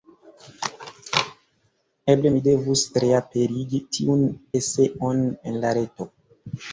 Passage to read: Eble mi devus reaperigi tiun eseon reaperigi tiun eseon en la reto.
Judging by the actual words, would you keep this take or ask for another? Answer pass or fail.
fail